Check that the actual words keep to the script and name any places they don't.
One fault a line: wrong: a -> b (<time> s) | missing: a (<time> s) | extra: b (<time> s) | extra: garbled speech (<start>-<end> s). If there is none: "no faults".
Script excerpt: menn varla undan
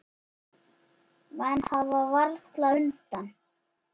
extra: hafa (1.7 s)